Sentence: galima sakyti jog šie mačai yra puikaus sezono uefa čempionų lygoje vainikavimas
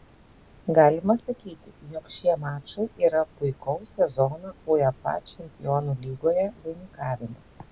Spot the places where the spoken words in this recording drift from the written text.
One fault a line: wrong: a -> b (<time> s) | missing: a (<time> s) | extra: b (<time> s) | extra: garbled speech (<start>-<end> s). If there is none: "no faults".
no faults